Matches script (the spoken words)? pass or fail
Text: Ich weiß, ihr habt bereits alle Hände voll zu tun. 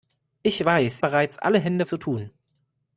fail